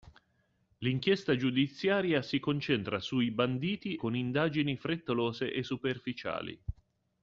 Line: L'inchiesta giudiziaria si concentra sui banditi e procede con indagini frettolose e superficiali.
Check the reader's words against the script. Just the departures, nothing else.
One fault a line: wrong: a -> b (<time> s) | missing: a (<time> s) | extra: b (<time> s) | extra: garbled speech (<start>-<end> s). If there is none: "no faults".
missing: e procede (4.0 s)